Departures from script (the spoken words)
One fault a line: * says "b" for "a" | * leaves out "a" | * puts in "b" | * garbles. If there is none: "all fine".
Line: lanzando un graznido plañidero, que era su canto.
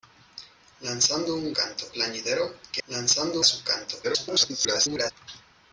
* says "canto" for "graznido"
* says "lanzando" for "era"
* garbles